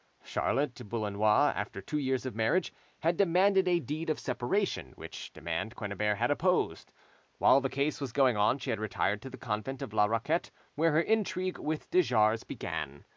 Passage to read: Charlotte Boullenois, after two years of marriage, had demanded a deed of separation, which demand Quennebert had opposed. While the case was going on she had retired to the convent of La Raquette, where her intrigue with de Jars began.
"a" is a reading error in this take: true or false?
false